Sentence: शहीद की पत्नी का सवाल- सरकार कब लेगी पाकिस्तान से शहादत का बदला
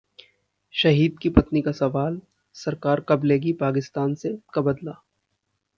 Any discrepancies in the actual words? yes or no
yes